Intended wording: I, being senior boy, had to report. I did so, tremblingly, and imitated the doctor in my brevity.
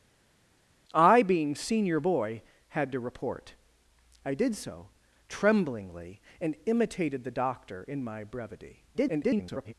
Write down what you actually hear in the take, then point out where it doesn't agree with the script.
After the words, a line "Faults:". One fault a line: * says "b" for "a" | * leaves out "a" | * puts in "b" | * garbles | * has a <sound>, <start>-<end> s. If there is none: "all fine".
I, being senior boy, had to report. I did so, tremblingly, and imitated the doctor in my brevity. [garbled]
Faults:
* garbles